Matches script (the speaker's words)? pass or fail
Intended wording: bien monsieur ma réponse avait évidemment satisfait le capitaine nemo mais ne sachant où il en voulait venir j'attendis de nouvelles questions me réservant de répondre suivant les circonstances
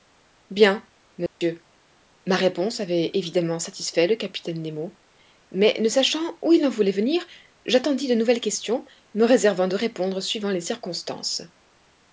pass